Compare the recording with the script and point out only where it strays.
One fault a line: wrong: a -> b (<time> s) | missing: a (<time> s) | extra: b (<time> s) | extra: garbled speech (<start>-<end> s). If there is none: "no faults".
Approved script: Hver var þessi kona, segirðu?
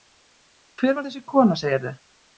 no faults